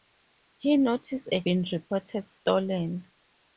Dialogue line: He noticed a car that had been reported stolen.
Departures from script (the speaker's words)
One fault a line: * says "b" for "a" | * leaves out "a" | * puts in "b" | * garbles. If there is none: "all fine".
* leaves out "car that had"